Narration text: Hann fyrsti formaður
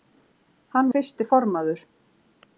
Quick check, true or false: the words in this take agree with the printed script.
true